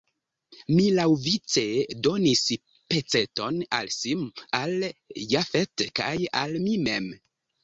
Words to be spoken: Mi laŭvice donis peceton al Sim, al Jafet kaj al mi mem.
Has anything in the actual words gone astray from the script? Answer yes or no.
no